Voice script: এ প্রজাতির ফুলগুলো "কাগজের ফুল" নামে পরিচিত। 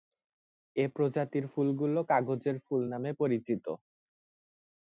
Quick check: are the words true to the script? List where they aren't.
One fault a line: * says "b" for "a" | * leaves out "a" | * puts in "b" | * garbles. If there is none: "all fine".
all fine